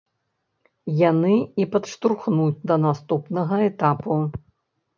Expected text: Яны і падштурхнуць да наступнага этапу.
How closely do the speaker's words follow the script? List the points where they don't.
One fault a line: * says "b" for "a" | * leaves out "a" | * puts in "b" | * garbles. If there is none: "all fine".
all fine